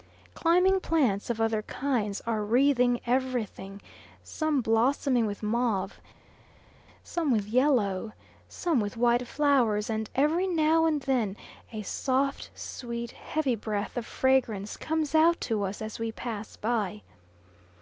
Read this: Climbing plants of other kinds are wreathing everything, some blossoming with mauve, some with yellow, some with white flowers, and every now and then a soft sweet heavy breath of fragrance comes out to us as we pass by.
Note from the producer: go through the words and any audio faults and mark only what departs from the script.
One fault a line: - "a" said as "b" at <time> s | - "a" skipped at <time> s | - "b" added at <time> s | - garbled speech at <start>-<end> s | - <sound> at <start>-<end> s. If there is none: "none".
none